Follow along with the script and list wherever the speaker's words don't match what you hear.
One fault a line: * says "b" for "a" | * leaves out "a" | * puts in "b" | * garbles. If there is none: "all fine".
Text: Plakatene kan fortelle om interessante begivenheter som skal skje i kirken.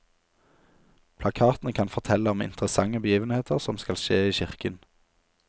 all fine